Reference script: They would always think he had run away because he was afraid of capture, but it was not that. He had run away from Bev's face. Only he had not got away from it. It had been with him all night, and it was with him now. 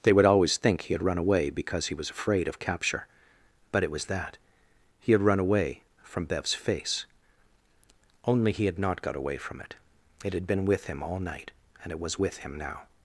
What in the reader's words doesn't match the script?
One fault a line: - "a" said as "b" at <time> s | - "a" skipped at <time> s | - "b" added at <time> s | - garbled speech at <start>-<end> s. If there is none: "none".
- "not" skipped at 4.0 s